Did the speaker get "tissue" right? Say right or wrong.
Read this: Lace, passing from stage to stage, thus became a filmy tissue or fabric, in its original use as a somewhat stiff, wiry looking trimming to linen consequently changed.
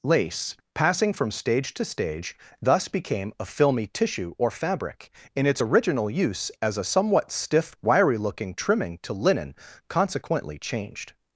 right